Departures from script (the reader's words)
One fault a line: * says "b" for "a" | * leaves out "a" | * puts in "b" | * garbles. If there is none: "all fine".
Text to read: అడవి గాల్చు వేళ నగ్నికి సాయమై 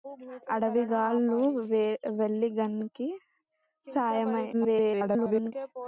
* garbles